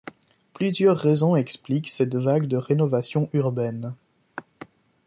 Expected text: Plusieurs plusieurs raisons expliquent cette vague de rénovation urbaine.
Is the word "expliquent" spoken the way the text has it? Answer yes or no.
yes